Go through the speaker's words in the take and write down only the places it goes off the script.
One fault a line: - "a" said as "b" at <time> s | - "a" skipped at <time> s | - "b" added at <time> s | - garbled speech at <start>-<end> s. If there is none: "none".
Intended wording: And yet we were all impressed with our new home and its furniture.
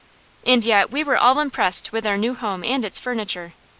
none